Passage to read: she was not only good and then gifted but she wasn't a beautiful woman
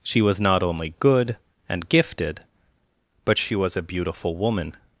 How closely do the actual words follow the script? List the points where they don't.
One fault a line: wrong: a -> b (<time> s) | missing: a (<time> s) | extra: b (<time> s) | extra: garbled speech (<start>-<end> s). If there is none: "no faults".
missing: then (1.9 s)
wrong: wasn't -> was (3.5 s)